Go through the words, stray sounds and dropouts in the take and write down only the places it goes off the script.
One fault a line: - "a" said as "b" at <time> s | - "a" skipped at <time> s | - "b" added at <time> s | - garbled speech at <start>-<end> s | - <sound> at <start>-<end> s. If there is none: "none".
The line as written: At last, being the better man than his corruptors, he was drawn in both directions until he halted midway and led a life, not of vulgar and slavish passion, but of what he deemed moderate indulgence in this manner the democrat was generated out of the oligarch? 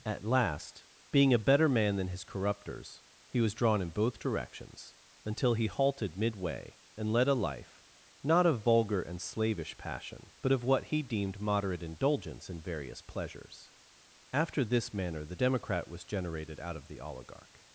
- "the" said as "a" at 1.3 s
- "various pleasures After" added at 12.6 s